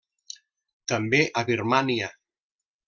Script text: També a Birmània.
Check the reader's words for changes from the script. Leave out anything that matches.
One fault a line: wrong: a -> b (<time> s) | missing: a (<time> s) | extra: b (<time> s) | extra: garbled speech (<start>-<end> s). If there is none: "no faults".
no faults